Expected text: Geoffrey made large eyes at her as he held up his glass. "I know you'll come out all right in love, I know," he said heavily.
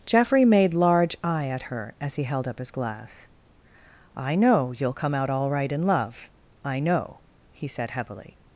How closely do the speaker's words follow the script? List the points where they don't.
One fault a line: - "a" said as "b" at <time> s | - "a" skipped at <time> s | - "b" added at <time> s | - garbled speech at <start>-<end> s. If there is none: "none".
- "eyes" said as "eye" at 1.2 s